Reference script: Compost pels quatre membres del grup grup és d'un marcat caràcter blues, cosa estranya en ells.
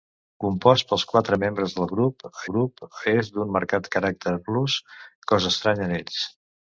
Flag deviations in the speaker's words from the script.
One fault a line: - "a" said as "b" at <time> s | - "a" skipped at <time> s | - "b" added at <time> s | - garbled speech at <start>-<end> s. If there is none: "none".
none